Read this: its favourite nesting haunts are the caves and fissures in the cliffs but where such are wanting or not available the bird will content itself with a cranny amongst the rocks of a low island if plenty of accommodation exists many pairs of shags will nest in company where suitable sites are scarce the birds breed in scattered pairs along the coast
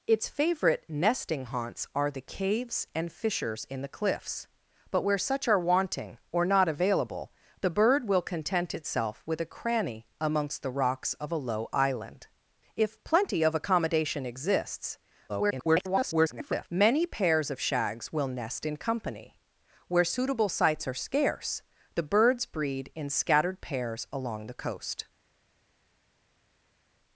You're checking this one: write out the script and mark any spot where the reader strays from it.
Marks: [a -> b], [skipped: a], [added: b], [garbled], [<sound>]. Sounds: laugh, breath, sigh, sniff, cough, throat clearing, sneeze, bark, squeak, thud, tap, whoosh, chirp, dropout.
its favourite nesting haunts are the caves and fissures in the cliffs but where such are wanting or not available the bird will content itself with a cranny amongst the rocks of a low island if plenty of accommodation exists [garbled] many pairs of shags will nest in company where suitable sites are scarce the birds breed in scattered pairs along the coast